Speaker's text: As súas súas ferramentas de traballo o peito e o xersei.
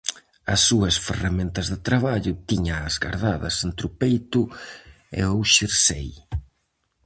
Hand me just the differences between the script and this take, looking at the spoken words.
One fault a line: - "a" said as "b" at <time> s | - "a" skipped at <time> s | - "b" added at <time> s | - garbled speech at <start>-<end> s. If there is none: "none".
- "súas" skipped at 0.9 s
- "tíñaas gardadas entre" added at 2.5 s